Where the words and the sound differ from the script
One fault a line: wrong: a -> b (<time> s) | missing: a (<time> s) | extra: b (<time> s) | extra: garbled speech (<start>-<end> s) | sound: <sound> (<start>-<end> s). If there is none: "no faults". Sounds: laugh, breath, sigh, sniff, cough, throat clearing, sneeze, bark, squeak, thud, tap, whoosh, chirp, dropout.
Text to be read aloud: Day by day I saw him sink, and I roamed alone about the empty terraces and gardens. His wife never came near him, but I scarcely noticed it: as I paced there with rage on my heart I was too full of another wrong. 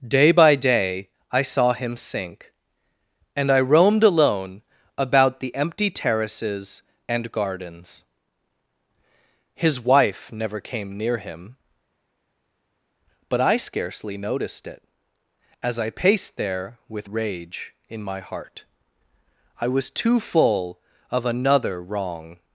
wrong: on -> in (17.9 s)